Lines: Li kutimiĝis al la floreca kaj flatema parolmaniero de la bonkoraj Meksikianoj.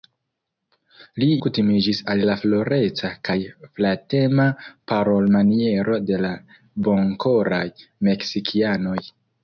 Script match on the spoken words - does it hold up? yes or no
yes